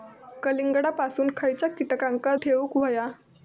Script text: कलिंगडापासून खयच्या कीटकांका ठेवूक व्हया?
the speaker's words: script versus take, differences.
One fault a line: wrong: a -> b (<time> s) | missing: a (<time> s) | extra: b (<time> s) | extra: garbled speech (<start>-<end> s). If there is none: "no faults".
no faults